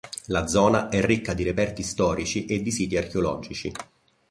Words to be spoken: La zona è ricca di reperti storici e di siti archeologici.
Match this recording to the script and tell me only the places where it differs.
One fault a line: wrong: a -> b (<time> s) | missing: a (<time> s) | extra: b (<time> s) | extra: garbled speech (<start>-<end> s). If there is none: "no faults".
no faults